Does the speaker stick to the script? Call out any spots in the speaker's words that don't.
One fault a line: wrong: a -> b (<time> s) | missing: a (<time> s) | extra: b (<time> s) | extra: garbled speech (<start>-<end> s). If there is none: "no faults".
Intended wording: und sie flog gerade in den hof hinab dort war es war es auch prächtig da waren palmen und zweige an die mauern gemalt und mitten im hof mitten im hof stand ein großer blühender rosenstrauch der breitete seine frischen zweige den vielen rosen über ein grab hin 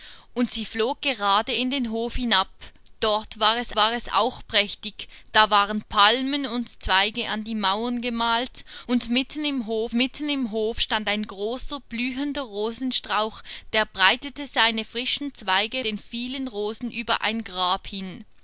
no faults